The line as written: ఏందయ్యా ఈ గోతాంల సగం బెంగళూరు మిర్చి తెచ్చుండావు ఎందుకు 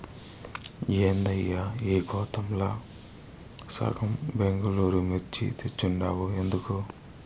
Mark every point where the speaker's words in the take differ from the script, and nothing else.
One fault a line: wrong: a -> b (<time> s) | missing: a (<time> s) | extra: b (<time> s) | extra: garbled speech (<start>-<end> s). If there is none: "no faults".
no faults